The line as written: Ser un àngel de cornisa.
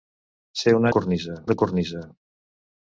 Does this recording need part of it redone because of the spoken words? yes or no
yes